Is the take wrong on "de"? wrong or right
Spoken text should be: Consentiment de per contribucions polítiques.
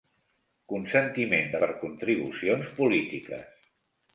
right